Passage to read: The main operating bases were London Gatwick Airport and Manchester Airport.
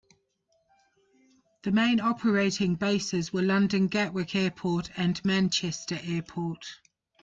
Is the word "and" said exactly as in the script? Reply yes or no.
yes